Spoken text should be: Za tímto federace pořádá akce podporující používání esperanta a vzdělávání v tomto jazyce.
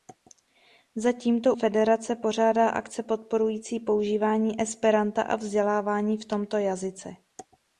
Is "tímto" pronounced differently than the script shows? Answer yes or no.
no